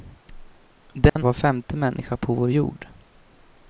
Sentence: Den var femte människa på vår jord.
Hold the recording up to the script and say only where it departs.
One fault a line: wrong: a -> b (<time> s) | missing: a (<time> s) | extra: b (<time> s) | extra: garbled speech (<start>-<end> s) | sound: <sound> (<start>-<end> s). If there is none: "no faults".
sound: dropout (1.1-1.2 s)